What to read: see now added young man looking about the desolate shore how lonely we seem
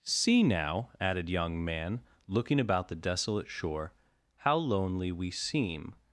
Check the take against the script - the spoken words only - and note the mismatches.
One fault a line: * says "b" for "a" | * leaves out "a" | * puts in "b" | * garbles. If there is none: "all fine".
all fine